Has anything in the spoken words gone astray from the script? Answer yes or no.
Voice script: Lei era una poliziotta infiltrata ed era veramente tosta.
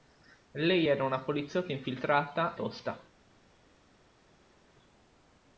yes